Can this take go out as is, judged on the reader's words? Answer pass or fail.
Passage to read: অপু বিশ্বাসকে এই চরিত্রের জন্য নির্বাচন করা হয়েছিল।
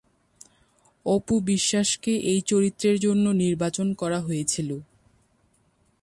pass